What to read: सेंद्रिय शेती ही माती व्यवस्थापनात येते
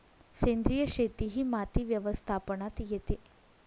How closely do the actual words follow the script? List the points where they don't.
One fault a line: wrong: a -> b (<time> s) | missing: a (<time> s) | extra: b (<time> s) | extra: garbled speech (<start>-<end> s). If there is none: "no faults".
no faults